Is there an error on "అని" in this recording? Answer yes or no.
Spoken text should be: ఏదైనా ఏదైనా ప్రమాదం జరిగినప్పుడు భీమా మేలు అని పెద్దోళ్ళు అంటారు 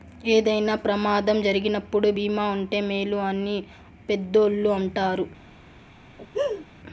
no